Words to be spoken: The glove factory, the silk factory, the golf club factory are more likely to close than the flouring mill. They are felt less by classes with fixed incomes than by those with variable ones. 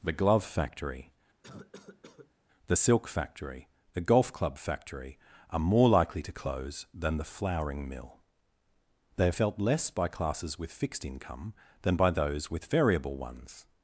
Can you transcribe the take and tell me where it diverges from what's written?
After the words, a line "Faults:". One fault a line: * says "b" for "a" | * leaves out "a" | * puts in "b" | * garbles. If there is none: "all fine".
The glove factory, the silk factory, the golf club factory are more likely to close than the flouring mill. They are felt less by classes with fixed income than by those with variable ones.
Faults:
* says "income" for "incomes"